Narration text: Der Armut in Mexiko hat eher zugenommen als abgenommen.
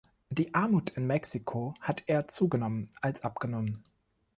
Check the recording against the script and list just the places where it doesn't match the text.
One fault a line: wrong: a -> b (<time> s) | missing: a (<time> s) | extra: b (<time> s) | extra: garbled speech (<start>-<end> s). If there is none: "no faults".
wrong: Der -> Die (0.3 s)